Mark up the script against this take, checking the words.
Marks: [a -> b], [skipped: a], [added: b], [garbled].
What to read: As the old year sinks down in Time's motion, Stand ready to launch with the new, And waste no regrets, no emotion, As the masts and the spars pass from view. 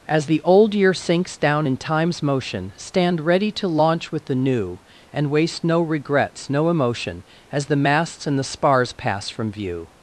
As the old year sinks down in Time's motion, Stand ready to launch with the new, And waste no regrets, no emotion, As the masts and the spars pass from view.